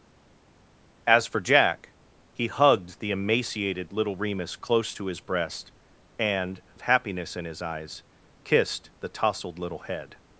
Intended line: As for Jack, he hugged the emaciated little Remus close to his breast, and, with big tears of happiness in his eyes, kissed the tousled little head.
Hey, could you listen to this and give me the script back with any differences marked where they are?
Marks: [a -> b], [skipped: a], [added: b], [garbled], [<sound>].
As for Jack, he hugged the emaciated little Remus close to his breast, and, [skipped: with big tears] of happiness in his eyes, kissed the tousled little head.